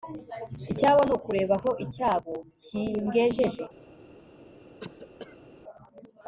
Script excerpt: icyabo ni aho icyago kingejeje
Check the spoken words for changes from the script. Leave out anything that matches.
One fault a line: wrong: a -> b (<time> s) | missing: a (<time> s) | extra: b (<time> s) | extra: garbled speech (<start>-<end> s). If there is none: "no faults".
extra: ukureba (1.2 s)